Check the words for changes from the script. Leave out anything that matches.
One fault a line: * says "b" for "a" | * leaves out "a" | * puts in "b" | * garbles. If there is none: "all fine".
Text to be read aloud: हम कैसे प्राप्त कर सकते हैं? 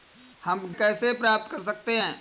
all fine